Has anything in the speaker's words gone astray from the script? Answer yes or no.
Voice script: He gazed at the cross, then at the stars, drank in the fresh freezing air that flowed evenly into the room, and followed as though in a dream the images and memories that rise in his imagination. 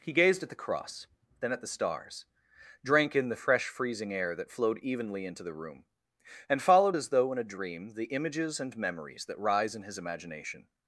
no